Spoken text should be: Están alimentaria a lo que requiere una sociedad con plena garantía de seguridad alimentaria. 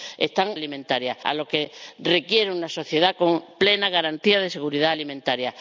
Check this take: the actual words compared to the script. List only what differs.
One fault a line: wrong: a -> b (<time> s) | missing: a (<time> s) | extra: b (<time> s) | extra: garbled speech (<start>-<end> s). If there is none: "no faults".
no faults